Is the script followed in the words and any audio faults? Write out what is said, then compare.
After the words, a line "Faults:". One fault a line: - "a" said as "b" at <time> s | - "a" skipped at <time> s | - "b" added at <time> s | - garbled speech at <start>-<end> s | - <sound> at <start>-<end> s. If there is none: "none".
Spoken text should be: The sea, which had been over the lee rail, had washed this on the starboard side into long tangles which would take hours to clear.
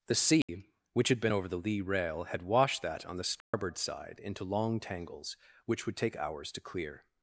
The sea, which had been over the lee rail, had washed that on the starboard side into long tangles which would take hours to clear.
Faults:
- dropout at 0.4-0.5 s
- "this" said as "that" at 2.8 s
- dropout at 3.4-3.5 s